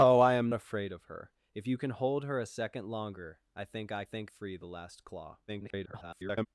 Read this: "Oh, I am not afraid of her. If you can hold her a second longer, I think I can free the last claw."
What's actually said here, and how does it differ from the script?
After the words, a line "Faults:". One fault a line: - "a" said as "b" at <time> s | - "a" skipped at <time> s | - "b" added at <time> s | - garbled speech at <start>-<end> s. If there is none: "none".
"Oh, I am afraid of her. If you can hold her a second longer, I think I think free the last claw." [garbled]
Faults:
- "not" skipped at 0.5 s
- "can" said as "think" at 4.0 s
- garbled speech at 5.5-6.5 s